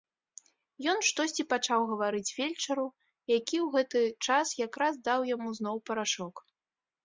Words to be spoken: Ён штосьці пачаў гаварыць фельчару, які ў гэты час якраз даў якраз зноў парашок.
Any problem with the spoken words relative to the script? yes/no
yes